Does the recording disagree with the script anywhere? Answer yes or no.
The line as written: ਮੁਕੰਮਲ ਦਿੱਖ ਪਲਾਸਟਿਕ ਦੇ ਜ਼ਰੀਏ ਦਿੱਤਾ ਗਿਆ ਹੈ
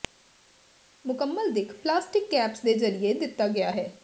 yes